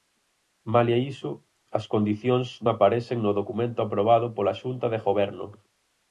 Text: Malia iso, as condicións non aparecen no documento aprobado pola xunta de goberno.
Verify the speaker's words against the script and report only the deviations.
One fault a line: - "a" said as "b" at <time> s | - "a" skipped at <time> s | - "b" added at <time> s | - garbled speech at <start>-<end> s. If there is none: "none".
- "non" skipped at 2.5 s